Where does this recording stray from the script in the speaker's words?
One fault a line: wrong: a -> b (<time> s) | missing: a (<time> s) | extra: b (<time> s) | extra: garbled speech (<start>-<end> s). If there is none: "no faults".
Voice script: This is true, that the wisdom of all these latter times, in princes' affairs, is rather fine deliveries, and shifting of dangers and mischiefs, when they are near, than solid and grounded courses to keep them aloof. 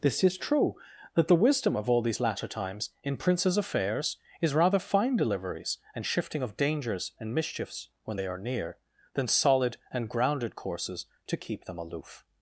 no faults